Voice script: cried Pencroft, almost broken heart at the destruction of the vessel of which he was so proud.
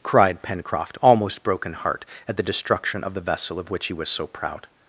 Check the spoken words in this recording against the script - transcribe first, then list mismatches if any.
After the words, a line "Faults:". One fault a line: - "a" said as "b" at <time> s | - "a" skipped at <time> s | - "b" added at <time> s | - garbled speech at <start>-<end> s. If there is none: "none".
cried Pencroft, almost broken heart at the destruction of the vessel of which he was so proud.
Faults:
none